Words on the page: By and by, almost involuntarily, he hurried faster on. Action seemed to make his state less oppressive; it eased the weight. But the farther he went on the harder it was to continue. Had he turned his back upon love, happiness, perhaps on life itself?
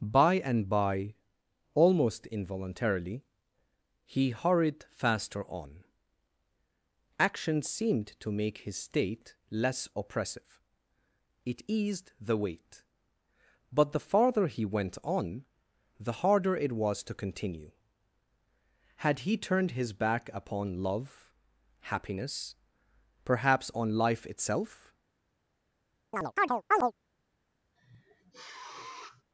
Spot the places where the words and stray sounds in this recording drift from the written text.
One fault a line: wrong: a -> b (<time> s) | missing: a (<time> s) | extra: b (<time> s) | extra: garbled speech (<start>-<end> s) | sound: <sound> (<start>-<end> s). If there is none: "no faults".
sound: chirp (26.1-26.9 s)
sound: sniff (27.8-29.2 s)